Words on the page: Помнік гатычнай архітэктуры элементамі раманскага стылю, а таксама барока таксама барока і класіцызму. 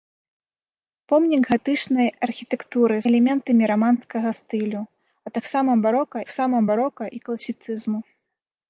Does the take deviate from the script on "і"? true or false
false